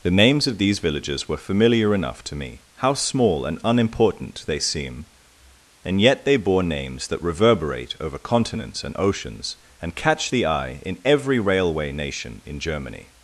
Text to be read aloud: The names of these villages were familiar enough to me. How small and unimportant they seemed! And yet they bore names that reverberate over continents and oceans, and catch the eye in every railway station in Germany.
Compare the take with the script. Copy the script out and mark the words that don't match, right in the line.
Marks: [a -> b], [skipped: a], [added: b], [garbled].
The names of these villages were familiar enough to me. How small and unimportant they [seemed! -> seem] And yet they bore names that reverberate over continents and oceans, and catch the eye in every railway [station -> nation] in Germany.